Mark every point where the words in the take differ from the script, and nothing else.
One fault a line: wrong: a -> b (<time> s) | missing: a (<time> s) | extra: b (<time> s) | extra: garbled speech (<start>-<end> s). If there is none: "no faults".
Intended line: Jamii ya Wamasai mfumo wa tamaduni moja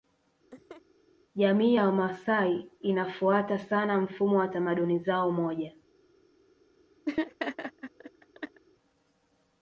extra: inafuata sana (2.8 s)
extra: zao (5.0 s)